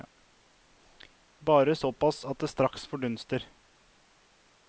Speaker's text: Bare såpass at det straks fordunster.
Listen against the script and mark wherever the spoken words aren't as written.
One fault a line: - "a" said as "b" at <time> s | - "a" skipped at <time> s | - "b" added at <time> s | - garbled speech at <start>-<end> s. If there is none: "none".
none